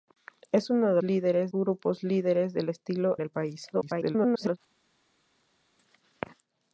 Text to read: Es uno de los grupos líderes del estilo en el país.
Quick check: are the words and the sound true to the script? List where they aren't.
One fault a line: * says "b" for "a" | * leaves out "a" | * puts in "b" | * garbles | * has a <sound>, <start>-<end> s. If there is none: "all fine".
* says "líderes" for "los"
* leaves out "en"
* garbles